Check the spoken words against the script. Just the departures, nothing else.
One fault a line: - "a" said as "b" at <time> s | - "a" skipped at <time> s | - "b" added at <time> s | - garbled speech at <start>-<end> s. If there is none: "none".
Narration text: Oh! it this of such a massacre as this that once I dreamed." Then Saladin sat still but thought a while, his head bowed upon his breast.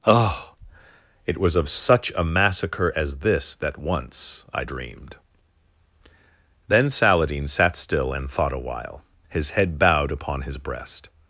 - "this" said as "was" at 1.4 s
- "but" said as "and" at 8.1 s